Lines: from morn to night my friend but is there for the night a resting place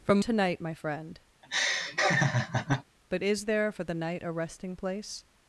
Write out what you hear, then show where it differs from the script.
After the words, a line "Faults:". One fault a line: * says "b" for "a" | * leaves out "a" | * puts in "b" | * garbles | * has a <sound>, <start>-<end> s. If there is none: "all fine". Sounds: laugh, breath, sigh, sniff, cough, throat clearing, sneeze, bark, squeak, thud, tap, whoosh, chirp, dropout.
from to night my friend but is there for the night a resting place
Faults:
* leaves out "morn"
* has a laugh, 1.4-2.8 s